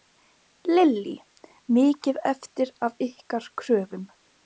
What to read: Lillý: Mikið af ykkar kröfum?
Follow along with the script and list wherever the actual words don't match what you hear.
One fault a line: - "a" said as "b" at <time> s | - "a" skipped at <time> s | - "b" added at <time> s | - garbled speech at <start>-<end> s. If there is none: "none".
- "eftir" added at 2.3 s